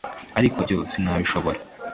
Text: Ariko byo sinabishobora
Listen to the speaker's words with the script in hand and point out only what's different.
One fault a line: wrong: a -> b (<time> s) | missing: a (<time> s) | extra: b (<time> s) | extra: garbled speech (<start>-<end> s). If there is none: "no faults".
no faults